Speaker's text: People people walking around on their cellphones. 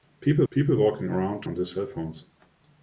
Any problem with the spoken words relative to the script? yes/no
no